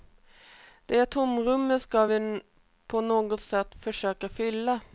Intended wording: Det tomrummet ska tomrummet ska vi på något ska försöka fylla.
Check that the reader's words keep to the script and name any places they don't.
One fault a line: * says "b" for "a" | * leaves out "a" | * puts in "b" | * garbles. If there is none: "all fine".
* leaves out "tomrummet ska"
* says "sätt" for "ska"